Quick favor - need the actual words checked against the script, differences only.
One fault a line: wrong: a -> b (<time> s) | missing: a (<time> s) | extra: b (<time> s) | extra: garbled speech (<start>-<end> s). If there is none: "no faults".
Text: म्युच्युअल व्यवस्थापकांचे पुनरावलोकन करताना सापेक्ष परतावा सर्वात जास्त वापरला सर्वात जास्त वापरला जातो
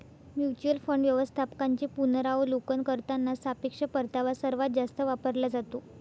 extra: फंड (0.8 s)
missing: सर्वात जास्त वापरला (5.5 s)